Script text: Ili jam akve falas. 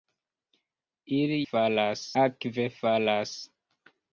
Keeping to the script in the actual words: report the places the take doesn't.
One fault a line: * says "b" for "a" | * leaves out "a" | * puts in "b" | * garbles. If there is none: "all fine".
* says "falas" for "jam"